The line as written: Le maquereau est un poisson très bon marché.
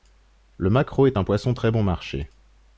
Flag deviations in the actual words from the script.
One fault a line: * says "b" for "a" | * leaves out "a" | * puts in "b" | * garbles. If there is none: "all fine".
all fine